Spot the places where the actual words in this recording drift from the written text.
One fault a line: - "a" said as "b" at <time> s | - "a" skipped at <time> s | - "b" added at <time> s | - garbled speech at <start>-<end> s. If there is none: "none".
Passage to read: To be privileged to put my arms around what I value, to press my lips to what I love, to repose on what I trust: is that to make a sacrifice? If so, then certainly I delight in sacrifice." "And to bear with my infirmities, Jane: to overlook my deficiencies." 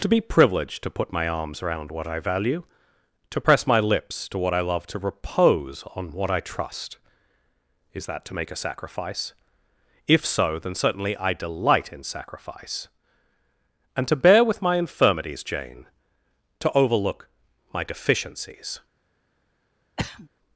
none